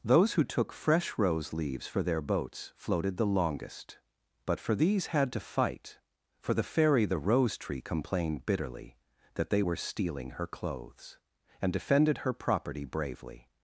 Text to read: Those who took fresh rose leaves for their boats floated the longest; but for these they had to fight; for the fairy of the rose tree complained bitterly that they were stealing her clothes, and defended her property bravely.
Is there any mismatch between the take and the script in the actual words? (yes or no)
yes